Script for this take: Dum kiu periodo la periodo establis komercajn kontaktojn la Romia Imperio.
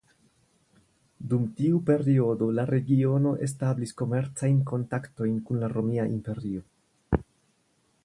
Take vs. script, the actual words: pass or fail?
fail